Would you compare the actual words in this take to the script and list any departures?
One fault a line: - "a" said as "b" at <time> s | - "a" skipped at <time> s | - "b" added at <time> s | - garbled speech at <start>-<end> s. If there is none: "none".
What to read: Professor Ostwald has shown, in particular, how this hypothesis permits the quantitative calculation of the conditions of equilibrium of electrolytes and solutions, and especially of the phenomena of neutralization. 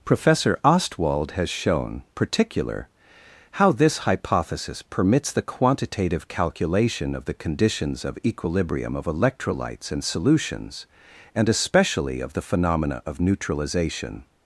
- "in" skipped at 2.0 s